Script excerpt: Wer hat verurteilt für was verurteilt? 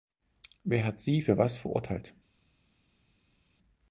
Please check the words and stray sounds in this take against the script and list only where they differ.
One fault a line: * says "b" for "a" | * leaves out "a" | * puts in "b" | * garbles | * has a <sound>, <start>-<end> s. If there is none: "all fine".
* says "sie" for "verurteilt"